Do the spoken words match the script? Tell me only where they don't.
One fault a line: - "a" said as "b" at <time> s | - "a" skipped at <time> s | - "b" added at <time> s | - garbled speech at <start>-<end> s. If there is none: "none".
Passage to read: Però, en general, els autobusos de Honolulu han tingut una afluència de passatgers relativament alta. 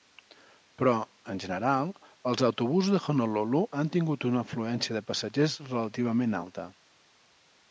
none